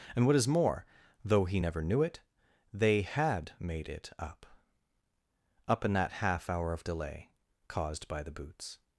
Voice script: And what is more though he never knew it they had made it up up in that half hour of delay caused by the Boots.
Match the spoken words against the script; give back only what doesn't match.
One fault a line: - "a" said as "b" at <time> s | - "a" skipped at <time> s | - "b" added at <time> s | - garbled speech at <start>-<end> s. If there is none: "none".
none